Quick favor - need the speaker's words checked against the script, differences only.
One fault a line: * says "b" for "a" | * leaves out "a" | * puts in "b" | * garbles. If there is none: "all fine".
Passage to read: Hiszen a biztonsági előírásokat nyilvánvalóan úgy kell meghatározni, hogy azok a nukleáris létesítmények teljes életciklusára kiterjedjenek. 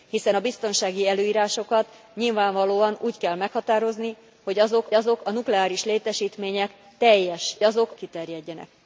* puts in "azok"
* says "azok" for "életciklusára"